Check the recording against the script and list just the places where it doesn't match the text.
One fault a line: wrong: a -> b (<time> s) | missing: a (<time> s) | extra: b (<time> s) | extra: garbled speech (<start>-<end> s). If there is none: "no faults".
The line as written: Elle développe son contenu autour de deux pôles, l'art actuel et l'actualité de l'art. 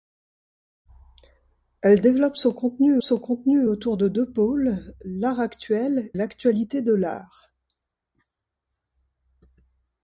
extra: son contenu (3.0 s)
missing: et (6.1 s)